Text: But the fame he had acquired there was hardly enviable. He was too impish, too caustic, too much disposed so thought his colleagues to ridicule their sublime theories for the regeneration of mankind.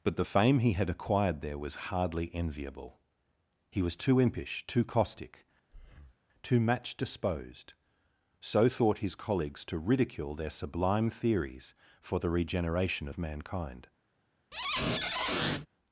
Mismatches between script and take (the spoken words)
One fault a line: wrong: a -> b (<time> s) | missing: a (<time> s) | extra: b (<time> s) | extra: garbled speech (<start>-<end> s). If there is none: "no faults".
wrong: much -> match (6.6 s)